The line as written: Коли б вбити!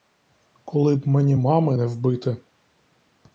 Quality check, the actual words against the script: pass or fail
fail